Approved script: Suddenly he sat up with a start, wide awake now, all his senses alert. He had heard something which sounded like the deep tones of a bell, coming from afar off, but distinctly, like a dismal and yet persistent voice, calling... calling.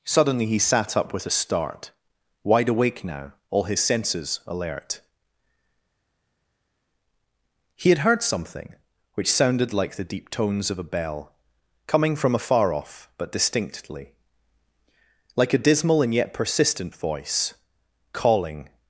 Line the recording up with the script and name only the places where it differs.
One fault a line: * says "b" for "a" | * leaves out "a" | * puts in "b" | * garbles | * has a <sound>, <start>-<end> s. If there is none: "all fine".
* leaves out "calling"